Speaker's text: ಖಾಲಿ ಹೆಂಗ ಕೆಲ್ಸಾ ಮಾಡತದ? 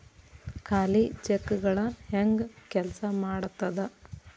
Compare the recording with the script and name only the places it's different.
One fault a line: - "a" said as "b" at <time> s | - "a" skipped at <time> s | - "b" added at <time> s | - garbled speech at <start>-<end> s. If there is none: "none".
- "ಚೆಕ್ಗಳ" added at 1.2 s